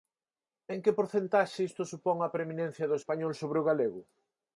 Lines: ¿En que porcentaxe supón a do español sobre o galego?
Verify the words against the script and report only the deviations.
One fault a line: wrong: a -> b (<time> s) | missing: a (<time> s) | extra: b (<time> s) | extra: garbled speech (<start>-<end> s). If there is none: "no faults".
extra: isto (1.7 s)
extra: preeminencia (2.3 s)